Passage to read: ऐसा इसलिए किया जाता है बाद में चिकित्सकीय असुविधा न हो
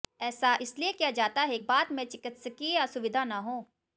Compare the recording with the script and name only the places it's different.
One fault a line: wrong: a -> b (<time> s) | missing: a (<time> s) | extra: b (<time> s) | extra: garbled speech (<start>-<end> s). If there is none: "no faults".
no faults